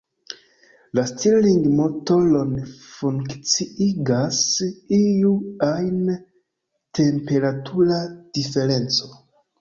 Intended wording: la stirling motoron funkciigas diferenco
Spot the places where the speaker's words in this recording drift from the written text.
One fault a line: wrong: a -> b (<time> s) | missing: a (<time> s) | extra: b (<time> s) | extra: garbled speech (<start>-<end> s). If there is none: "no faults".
extra: iu ajn temperatura (5.0 s)